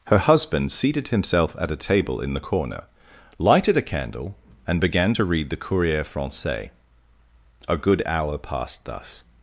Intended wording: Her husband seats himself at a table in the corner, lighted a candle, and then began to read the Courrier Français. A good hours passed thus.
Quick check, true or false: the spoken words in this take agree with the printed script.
false